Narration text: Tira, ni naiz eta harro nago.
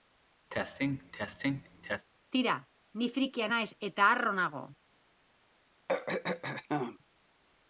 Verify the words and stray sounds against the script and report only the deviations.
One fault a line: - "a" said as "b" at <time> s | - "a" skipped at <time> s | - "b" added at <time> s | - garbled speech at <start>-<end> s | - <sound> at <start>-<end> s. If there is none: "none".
- cough at 0.5-2.1 s
- "frikia" added at 3.1 s
- throat clearing at 5.9-7.0 s